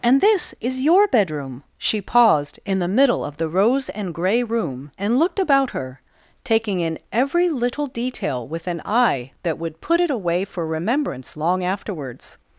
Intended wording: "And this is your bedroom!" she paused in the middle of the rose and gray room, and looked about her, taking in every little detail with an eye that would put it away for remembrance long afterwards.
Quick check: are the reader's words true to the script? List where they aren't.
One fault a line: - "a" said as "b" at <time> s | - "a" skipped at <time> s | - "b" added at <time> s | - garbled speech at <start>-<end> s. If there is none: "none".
none